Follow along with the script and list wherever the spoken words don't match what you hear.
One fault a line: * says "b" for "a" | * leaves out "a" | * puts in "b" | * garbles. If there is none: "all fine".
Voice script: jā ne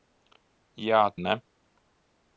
all fine